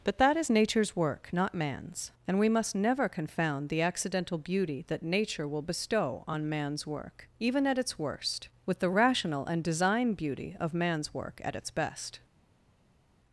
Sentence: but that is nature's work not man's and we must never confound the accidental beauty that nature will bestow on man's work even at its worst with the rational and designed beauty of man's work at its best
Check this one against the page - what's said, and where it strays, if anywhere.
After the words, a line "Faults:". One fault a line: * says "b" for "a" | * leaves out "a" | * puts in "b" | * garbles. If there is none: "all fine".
but that is nature's work not man's and we must never confound the accidental beauty that nature will bestow on man's work even at its worst with the rational and design beauty of man's work at its best
Faults:
* says "design" for "designed"